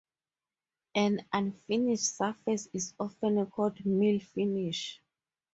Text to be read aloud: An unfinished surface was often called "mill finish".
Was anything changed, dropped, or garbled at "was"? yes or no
yes